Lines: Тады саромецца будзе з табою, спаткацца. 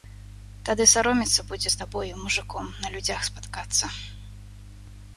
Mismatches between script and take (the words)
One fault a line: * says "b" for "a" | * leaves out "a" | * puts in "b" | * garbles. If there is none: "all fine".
* puts in "мужыком на людзях"